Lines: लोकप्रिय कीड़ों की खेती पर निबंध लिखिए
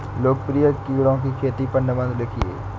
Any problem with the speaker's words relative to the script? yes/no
no